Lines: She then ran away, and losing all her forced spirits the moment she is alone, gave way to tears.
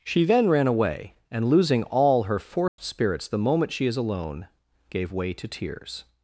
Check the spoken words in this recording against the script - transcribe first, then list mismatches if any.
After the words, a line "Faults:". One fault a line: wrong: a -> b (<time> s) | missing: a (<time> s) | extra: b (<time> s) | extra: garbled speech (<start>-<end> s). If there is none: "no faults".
She then ran away, and losing all her forced spirits the moment she is alone, gave way to tears.
Faults:
no faults